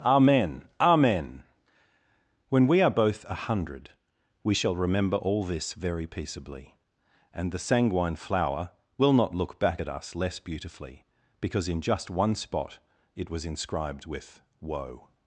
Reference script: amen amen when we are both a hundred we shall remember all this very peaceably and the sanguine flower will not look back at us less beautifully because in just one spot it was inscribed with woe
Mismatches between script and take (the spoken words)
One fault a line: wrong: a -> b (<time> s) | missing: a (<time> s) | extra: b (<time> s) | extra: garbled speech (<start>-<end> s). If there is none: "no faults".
no faults